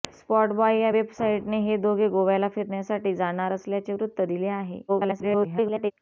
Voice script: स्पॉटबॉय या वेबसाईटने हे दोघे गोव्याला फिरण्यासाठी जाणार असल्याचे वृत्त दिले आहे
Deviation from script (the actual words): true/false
true